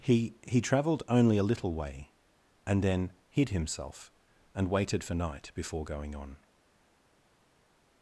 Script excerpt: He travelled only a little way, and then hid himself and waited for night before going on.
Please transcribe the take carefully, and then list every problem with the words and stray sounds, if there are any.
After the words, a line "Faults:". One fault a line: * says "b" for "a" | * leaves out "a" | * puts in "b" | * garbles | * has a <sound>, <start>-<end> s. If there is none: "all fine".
He he travelled only a little way, and then hid himself and waited for night before going on.
Faults:
* puts in "he"